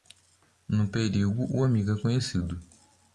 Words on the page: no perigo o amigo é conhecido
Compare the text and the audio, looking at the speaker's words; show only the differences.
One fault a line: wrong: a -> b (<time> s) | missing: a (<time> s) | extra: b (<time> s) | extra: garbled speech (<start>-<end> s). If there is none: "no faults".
no faults